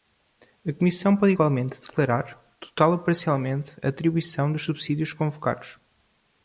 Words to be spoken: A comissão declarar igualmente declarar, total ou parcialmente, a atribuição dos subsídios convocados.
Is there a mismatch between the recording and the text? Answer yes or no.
yes